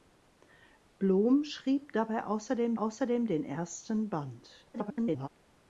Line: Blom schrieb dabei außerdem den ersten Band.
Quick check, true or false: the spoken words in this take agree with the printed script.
false